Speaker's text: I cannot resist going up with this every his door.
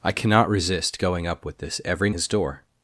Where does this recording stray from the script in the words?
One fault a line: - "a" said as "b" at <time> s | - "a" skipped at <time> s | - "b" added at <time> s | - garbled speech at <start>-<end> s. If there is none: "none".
none